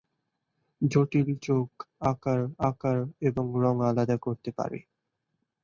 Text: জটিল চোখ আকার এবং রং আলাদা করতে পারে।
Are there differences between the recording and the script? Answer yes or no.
yes